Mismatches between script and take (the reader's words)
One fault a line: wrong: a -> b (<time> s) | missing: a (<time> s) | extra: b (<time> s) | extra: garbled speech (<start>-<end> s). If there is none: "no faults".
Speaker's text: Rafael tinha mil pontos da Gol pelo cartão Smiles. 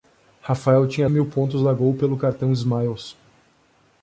no faults